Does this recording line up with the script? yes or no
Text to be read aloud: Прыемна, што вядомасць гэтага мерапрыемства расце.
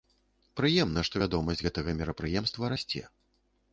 yes